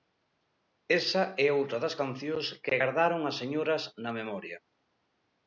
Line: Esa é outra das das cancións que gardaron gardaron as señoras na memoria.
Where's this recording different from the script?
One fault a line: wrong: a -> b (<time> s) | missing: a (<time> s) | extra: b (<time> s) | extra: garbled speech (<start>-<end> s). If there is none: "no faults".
missing: das (2.0 s)
missing: gardaron (3.2 s)